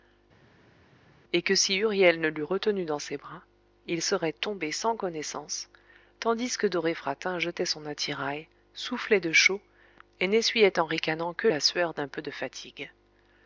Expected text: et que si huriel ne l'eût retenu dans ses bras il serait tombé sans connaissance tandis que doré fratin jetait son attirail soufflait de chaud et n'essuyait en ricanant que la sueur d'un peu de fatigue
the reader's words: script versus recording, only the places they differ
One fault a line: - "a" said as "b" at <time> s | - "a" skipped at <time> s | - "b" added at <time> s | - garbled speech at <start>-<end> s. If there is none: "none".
none